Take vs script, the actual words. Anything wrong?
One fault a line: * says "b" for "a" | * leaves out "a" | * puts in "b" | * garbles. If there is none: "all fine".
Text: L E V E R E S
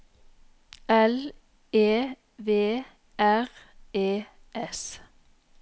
* leaves out "E"